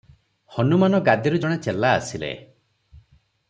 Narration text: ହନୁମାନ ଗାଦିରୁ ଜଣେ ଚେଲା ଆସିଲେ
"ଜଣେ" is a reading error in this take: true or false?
false